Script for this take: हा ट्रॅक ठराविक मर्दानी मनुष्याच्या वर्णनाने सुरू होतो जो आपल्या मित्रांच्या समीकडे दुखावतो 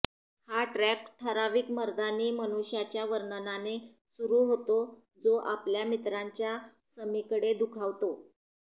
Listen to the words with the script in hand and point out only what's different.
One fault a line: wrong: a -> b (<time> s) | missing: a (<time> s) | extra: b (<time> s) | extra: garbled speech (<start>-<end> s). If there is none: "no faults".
no faults